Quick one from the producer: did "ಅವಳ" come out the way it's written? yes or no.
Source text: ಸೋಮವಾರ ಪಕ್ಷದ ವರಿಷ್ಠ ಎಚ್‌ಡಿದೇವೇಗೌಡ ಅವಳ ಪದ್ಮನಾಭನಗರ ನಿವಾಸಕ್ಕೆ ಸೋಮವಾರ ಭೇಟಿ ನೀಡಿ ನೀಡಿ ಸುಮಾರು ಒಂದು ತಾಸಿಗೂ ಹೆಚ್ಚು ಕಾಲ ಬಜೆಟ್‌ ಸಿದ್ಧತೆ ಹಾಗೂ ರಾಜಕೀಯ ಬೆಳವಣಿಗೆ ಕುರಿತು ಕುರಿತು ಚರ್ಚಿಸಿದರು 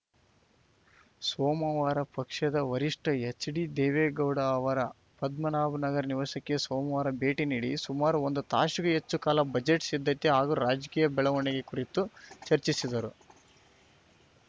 no